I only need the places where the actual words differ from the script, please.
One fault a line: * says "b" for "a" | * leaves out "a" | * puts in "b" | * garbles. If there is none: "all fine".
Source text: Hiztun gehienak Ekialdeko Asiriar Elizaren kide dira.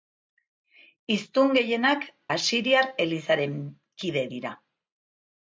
* leaves out "Ekialdeko"